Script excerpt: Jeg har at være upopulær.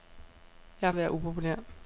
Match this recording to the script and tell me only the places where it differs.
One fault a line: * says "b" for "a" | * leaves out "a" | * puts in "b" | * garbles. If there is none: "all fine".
all fine